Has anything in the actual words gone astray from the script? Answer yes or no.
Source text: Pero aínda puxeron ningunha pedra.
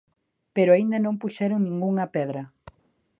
yes